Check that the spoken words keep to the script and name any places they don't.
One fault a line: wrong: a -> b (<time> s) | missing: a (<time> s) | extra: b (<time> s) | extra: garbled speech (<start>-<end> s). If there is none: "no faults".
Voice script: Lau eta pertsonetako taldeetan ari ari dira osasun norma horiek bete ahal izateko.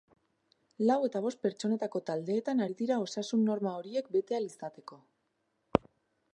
extra: bost (1.2 s)
missing: ari (2.8 s)